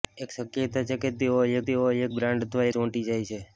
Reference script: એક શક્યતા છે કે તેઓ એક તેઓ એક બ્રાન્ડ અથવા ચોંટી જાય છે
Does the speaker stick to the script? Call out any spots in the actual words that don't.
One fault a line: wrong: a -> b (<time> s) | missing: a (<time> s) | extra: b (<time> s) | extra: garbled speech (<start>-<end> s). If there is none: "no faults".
no faults